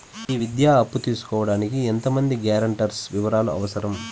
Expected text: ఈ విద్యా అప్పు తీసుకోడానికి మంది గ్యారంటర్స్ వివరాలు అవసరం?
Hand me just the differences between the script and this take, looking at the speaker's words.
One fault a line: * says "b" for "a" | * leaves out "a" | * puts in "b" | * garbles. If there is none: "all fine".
* puts in "ఎంత"